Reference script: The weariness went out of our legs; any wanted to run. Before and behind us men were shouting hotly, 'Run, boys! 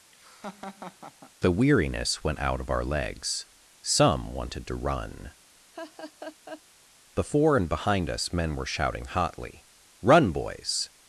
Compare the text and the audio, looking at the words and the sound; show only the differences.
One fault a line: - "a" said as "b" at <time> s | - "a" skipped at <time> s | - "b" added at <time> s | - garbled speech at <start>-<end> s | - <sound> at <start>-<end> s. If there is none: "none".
- laugh at 0.1-1.3 s
- "any" said as "some" at 3.8 s
- laugh at 5.7-6.6 s